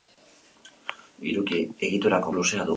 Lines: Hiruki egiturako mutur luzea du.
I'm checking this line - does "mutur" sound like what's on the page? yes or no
no